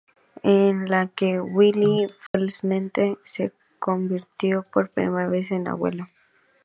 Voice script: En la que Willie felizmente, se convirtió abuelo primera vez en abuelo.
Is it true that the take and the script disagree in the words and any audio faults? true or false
true